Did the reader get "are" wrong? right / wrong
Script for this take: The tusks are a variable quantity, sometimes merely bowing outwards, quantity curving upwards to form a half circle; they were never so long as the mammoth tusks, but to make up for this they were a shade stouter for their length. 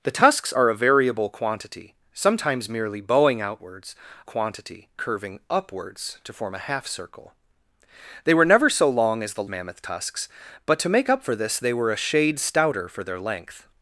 right